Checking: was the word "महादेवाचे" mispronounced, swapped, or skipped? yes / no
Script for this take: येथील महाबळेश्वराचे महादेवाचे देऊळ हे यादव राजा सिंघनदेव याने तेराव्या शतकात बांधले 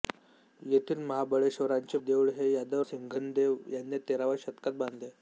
yes